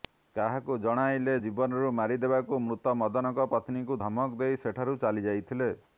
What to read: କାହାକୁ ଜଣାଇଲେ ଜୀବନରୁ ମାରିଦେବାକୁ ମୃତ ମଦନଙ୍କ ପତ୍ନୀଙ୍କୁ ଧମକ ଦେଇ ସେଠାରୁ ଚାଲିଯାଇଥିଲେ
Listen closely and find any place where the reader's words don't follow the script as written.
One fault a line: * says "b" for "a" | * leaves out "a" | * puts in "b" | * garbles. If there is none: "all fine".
all fine